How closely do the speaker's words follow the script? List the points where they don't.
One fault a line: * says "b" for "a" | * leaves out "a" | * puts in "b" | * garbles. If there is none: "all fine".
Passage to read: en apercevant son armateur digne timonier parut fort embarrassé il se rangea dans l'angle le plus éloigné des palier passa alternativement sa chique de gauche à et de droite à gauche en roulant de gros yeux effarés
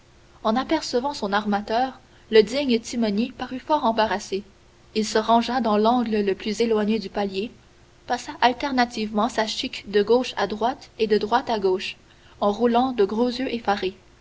* puts in "le"
* says "du" for "des"
* puts in "droite"